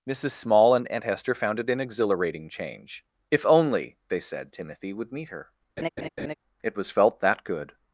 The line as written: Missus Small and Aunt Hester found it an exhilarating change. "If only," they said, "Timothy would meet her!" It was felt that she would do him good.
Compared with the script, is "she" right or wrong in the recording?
wrong